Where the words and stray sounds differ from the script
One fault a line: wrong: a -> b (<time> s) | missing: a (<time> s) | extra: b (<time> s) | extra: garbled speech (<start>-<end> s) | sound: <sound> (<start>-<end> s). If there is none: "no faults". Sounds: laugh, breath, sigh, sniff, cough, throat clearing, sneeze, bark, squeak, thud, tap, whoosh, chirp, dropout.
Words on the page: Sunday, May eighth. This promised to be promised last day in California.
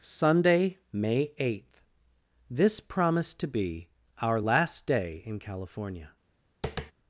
wrong: promised -> our (4.2 s)
sound: tap (6.6-6.9 s)